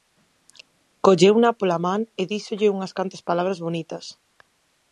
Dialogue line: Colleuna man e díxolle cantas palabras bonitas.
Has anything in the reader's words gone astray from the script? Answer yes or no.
yes